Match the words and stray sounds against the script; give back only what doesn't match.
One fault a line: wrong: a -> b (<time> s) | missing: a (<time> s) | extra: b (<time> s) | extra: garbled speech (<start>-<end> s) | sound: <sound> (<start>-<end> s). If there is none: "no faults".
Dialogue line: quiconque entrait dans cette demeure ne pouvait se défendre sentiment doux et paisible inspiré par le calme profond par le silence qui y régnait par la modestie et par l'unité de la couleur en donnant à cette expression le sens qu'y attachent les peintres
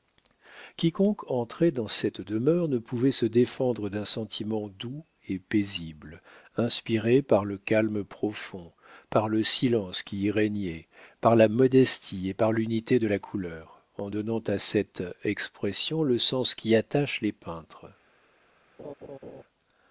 extra: d'un (3.9 s)
sound: laugh (18.8-19.4 s)